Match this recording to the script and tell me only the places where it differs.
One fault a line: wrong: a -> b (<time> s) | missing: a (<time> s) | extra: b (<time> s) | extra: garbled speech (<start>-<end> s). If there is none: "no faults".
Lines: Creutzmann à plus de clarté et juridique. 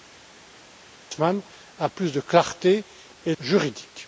no faults